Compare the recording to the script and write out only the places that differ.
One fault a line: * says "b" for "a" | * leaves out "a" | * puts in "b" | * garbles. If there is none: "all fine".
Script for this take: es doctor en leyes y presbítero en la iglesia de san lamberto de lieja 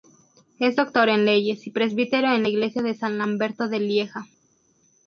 all fine